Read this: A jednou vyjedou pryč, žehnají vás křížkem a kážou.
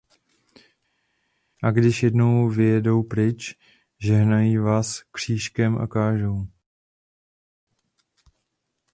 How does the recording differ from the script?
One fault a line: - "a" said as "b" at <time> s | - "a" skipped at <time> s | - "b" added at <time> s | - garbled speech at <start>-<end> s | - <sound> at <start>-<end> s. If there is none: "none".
- "když" added at 1.7 s